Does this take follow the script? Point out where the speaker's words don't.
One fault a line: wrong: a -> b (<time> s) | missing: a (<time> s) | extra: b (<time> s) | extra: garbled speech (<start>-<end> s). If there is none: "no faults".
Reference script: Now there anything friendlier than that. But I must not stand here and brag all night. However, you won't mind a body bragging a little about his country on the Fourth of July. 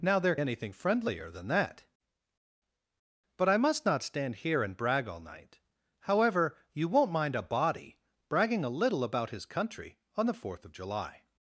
no faults